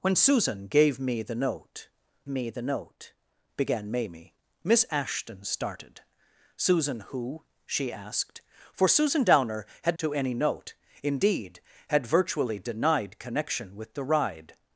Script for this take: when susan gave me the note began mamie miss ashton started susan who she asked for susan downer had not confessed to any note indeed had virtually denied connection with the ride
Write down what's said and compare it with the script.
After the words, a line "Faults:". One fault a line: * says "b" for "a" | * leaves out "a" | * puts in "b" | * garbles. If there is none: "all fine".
when susan gave me the note me the note began mamie miss ashton started susan who she asked for susan downer had to any note indeed had virtually denied connection with the ride
Faults:
* puts in "me the note"
* leaves out "not confessed"